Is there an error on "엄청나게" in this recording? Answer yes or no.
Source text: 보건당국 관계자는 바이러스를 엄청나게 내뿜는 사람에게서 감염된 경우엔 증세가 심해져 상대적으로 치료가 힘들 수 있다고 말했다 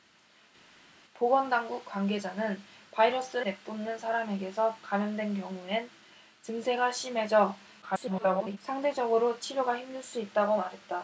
yes